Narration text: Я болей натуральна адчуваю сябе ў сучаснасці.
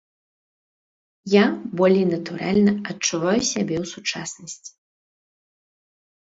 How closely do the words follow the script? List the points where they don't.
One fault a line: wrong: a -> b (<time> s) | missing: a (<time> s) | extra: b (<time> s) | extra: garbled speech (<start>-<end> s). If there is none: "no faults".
no faults